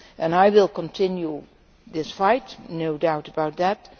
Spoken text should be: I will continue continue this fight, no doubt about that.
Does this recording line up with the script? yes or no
no